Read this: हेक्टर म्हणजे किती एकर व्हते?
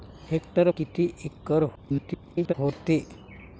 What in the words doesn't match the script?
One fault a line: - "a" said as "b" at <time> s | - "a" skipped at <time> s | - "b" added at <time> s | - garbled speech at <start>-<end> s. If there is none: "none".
- "म्हणजे" skipped at 0.7 s
- garbled speech at 1.8-2.5 s